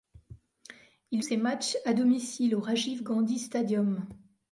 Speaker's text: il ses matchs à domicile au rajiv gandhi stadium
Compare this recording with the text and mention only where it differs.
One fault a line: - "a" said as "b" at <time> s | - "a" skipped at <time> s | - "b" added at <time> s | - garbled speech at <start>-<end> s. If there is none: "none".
none